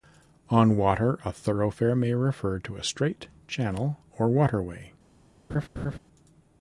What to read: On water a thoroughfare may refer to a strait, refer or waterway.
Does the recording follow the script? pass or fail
fail